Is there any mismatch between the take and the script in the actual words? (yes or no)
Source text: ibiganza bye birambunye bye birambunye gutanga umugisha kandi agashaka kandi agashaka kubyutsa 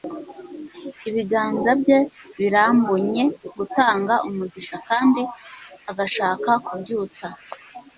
yes